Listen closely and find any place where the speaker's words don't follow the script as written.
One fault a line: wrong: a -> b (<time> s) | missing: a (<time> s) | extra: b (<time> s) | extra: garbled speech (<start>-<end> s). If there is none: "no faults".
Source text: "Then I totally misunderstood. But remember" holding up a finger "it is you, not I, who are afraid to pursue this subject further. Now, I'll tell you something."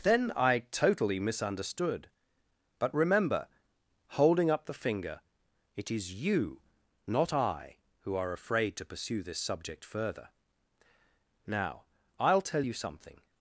wrong: a -> the (4.6 s)